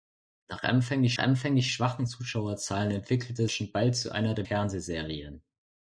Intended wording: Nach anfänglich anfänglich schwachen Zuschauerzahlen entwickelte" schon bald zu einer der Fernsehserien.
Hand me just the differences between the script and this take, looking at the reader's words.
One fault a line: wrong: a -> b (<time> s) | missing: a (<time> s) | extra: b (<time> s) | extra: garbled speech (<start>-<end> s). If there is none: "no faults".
no faults